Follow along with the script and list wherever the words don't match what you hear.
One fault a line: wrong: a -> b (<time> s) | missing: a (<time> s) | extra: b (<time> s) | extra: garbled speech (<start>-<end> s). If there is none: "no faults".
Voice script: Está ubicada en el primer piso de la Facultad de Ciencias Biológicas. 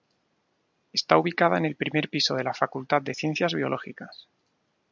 no faults